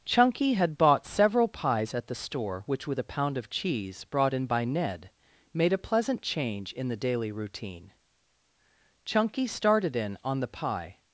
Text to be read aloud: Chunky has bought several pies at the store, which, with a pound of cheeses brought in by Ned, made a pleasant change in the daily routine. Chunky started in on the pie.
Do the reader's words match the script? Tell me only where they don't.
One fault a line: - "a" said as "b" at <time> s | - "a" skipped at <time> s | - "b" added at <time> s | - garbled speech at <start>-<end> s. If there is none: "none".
- "has" said as "had" at 0.5 s
- "cheeses" said as "cheese" at 3.5 s